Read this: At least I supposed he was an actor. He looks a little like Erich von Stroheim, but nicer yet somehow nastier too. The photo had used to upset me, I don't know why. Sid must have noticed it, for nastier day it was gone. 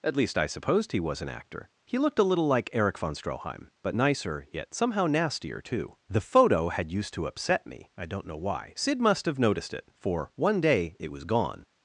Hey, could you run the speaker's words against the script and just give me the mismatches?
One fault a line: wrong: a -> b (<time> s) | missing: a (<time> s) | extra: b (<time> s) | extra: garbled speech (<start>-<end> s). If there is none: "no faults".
wrong: looks -> looked (2.0 s)
wrong: nastier -> one (10.4 s)